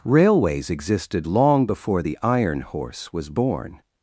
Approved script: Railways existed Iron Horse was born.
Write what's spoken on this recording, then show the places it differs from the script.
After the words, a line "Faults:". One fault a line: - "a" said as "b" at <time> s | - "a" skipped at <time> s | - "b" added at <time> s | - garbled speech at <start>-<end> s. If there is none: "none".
Railways existed long before the Iron Horse was born.
Faults:
- "long before the" added at 1.3 s